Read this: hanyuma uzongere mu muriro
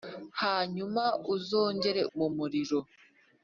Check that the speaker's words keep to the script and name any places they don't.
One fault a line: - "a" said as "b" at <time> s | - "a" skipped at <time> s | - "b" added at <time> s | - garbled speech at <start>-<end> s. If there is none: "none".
none